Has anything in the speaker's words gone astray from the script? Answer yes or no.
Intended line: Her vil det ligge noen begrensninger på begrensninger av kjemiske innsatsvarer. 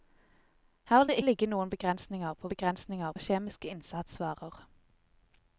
no